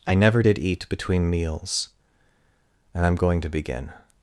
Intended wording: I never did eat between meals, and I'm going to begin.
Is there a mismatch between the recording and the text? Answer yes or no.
no